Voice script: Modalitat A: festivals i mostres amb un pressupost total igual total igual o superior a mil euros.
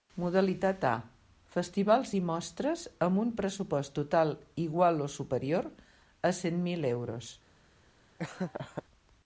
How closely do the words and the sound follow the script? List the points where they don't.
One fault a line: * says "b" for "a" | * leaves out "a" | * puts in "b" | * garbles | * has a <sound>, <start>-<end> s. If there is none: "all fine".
* leaves out "total igual"
* puts in "cent"
* has a laugh, 8.2-8.8 s